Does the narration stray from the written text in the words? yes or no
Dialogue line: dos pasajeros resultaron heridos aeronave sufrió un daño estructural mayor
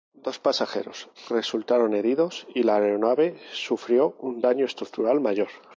yes